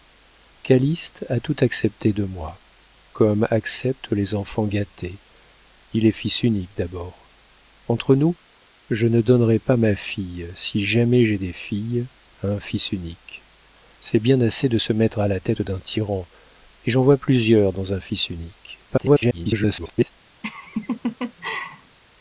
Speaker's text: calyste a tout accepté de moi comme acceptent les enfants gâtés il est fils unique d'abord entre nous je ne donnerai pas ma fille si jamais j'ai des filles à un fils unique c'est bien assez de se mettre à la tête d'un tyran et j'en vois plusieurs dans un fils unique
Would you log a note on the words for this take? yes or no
yes